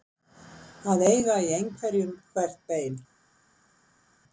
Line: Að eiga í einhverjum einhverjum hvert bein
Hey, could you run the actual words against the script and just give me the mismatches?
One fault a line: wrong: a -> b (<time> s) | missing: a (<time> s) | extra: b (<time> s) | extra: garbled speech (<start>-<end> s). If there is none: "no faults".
missing: einhverjum (2.2 s)